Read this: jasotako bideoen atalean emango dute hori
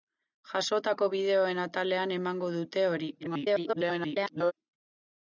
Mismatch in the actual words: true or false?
true